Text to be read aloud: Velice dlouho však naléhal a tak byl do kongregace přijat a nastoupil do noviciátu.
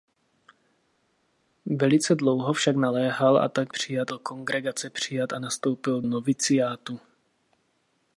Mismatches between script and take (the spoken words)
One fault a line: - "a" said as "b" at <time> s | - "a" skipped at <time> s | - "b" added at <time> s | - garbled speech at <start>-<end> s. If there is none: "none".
- "byl" said as "přijat" at 3.7 s
- "do" skipped at 6.0 s